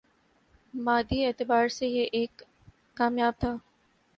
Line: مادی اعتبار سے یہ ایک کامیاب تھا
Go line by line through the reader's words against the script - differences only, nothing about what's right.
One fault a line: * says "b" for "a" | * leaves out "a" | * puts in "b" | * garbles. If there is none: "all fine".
all fine